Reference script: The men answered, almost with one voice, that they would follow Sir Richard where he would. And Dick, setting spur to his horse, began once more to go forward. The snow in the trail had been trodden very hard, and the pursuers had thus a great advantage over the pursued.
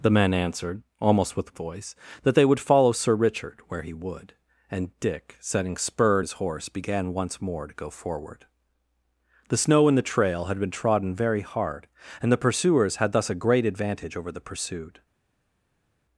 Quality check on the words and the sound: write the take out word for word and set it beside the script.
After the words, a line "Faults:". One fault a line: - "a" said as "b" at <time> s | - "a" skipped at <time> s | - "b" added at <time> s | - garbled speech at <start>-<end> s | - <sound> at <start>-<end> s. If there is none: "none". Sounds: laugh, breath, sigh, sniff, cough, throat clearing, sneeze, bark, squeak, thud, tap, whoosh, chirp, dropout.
The men answered, almost with voice, that they would follow Sir Richard where he would. And Dick, setting spur his horse, began once more to go forward. The snow in the trail had been trodden very hard, and the pursuers had thus a great advantage over the pursued.
Faults:
- "one" skipped at 1.6 s
- "to" skipped at 6.2 s